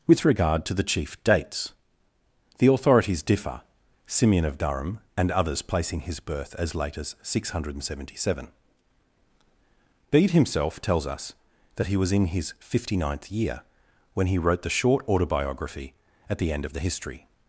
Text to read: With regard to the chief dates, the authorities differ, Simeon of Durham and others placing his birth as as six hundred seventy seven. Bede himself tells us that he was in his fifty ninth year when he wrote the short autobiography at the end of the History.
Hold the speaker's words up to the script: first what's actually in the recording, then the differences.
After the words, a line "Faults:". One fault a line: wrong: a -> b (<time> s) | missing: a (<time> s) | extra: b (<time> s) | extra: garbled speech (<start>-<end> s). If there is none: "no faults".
With regard to the chief dates, the authorities differ, Simeon of Durham and others placing his birth as late as six hundred seventy seven. Bede himself tells us that he was in his fifty ninth year when he wrote the short autobiography at the end of the History.
Faults:
extra: late (6.7 s)